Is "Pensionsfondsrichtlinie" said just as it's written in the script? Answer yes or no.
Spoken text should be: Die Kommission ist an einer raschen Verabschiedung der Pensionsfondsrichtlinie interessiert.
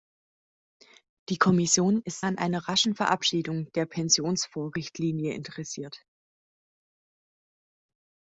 yes